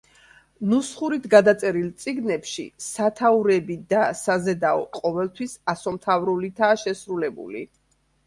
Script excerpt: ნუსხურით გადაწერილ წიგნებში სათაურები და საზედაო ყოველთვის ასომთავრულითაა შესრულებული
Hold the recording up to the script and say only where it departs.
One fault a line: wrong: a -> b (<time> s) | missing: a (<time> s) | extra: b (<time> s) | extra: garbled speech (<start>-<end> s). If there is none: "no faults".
no faults